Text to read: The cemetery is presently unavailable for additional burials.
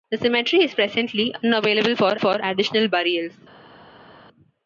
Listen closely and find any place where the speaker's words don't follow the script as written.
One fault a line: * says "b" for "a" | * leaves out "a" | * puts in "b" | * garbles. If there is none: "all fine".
* puts in "for"